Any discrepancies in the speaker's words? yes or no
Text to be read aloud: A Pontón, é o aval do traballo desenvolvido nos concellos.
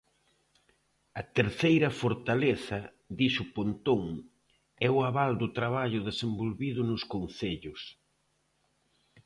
yes